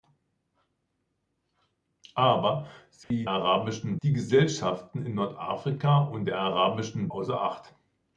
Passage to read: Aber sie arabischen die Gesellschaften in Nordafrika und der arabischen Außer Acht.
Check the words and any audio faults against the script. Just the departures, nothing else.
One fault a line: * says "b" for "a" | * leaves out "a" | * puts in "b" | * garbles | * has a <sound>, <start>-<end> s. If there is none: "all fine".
* has a dropout, 3.0-3.1 s